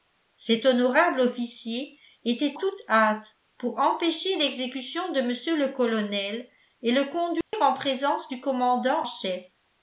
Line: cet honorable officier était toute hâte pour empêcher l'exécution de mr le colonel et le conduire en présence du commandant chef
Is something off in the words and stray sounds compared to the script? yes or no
yes